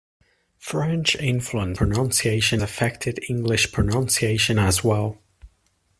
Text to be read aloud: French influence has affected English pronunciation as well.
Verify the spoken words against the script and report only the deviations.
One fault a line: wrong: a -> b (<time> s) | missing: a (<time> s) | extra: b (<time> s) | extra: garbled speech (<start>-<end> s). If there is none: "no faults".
wrong: has -> pronunciation (1.7 s)